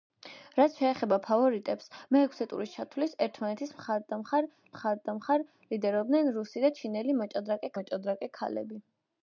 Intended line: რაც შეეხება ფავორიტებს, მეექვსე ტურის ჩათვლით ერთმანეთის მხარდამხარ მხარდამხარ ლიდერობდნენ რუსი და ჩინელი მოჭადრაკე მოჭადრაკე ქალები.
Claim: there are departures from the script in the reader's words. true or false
false